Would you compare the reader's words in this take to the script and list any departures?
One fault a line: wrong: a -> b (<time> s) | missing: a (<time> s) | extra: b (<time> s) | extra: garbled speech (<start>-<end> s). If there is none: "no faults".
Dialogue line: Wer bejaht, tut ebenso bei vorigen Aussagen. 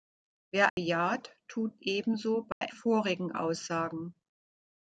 no faults